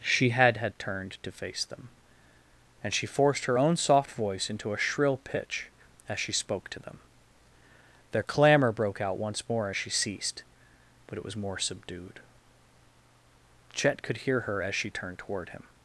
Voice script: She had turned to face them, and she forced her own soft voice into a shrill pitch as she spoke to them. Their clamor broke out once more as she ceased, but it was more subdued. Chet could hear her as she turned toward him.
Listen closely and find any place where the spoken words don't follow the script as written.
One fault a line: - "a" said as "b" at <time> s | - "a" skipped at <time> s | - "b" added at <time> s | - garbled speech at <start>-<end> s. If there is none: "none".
- "had" added at 0.6 s